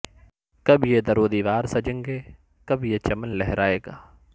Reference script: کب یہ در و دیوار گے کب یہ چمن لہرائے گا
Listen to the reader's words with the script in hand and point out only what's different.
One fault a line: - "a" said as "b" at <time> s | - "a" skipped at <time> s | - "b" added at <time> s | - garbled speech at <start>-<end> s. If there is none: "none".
- "سجیں" added at 1.6 s